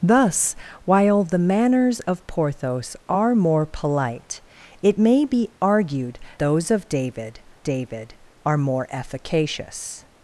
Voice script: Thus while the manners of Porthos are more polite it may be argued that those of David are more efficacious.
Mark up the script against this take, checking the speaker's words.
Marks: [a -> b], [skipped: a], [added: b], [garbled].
Thus while the manners of Porthos are more polite it may be argued [skipped: that] those of David [added: David] are more efficacious.